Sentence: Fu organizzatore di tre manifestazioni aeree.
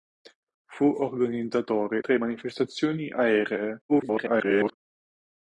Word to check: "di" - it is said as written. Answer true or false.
false